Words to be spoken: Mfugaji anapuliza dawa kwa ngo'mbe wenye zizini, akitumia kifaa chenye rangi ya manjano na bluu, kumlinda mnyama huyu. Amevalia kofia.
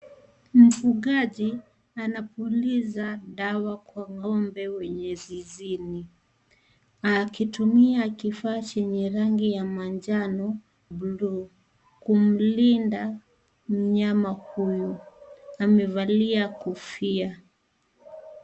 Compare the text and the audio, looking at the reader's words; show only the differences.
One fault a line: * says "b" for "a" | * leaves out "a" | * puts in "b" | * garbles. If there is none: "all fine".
* leaves out "na"